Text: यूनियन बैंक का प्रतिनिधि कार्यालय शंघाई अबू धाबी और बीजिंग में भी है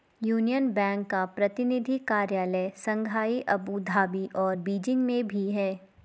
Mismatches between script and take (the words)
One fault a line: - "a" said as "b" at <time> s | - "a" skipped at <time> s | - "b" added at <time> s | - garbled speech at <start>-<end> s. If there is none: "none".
none